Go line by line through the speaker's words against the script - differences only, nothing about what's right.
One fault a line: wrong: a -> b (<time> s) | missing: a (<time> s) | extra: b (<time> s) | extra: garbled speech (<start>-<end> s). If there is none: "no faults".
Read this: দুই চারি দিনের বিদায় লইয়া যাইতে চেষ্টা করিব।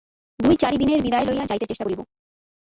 no faults